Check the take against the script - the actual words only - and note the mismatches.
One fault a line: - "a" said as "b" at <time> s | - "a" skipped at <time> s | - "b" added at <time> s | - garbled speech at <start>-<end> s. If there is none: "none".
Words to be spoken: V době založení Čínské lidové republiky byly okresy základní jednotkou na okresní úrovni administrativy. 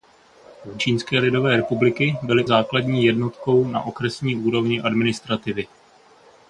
- "době založení" skipped at 0.8 s
- "okresy" skipped at 2.4 s